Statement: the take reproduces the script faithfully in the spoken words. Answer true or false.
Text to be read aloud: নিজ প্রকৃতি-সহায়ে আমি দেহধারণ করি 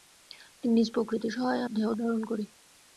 false